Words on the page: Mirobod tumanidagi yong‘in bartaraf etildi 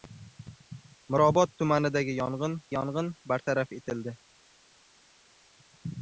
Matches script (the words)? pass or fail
fail